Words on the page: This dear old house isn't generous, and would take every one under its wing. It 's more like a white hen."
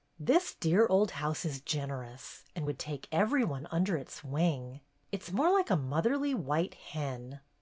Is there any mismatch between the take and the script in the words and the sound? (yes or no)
yes